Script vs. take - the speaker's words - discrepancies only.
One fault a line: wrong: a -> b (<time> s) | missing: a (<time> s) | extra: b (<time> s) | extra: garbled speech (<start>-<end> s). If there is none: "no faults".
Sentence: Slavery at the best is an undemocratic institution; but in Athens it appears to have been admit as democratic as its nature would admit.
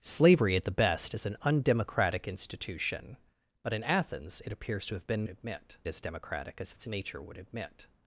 no faults